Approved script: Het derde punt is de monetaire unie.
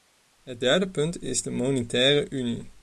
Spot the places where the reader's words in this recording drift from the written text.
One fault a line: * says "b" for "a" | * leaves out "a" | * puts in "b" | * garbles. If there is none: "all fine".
all fine